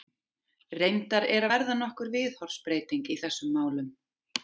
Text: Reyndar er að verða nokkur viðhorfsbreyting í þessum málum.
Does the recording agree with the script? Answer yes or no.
yes